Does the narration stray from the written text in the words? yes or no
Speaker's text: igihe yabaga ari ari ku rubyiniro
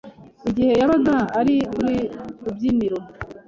yes